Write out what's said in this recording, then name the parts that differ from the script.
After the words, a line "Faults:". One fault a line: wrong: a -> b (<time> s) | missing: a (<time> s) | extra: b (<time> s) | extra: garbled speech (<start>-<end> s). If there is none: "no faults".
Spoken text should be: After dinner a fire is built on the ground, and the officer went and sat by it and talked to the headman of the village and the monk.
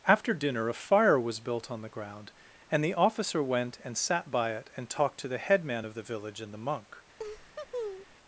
After dinner a fire was built on the ground, and the officer went and sat by it and talked to the headman of the village and the monk.
Faults:
wrong: is -> was (1.2 s)